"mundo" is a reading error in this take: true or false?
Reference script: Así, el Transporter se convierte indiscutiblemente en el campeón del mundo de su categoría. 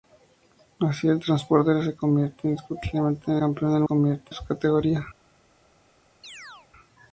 true